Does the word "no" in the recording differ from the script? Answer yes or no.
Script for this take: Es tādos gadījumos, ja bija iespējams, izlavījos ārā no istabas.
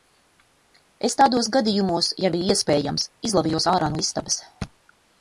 no